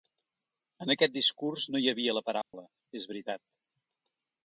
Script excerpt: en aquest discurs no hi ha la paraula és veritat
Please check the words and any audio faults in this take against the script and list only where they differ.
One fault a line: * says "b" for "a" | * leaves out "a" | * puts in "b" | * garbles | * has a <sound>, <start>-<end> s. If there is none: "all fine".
* says "havia" for "ha"
* has a dropout, 2.4-2.5 s